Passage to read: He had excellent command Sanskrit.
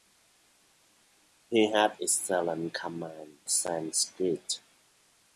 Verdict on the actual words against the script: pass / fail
pass